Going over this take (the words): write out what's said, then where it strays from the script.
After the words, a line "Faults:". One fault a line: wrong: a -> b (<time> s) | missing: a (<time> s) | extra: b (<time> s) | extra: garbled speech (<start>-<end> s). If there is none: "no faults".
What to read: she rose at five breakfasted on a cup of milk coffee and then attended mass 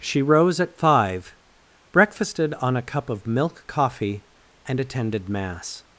she rose at five breakfasted on a cup of milk coffee and attended mass
Faults:
missing: then (4.8 s)